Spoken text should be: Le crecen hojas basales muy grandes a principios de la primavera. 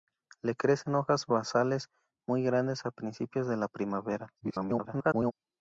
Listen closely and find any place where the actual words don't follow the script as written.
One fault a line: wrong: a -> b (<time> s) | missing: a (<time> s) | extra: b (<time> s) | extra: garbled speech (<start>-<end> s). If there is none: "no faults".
extra: garbled speech (4.4-5.3 s)